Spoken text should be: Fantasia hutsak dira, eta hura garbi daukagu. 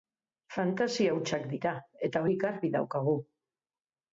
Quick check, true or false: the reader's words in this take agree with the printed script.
false